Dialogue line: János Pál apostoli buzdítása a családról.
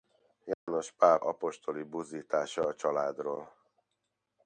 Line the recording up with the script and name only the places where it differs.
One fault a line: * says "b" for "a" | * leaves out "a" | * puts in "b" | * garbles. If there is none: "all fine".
all fine